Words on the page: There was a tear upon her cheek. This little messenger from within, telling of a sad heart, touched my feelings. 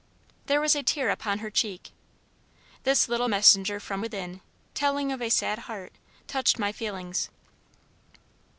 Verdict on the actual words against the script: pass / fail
pass